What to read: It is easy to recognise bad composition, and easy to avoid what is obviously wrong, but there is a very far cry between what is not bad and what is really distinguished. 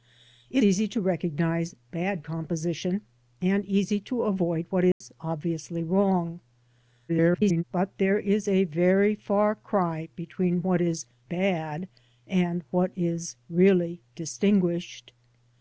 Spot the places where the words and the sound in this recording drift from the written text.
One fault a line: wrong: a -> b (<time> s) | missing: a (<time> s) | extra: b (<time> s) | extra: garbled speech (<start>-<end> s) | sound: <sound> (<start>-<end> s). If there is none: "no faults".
missing: is (0.6 s)
sound: dropout (4.9-5.0 s)
extra: garbled speech (7.1-7.6 s)
missing: not (11.1 s)